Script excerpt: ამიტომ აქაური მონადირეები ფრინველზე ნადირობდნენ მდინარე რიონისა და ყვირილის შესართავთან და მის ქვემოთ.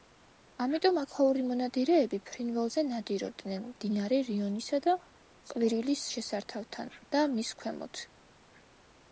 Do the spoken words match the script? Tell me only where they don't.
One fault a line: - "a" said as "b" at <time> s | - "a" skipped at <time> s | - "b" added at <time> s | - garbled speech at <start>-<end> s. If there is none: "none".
none